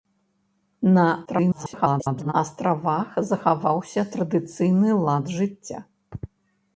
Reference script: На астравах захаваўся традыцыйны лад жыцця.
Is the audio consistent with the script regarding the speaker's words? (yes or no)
no